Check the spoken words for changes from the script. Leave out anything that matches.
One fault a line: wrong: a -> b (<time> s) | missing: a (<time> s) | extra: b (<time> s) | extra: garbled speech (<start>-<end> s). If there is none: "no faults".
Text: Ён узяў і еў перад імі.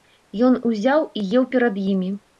no faults